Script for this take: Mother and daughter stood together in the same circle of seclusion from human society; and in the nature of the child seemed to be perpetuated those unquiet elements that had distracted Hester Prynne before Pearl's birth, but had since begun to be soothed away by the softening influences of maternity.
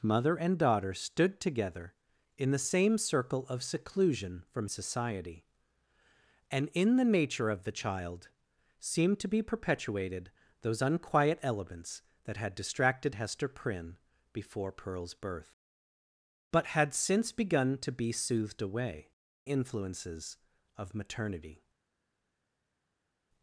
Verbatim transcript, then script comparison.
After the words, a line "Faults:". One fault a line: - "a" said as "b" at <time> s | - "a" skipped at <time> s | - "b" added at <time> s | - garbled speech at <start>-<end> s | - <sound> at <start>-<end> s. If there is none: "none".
Mother and daughter stood together in the same circle of seclusion from society; and in the nature of the child seemed to be perpetuated those unquiet elements that had distracted Hester Prynne before Pearl's birth, but had since begun to be soothed away influences of maternity.
Faults:
- "human" skipped at 4.7 s
- "by the softening" skipped at 19.1 s